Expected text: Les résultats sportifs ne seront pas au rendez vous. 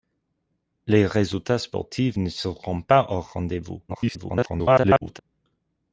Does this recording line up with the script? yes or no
no